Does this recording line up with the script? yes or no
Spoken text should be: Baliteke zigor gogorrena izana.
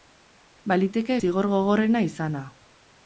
yes